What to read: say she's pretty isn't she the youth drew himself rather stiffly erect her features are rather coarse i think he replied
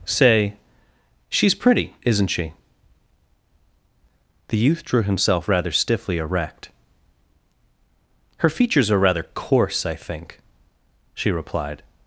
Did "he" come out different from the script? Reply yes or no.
yes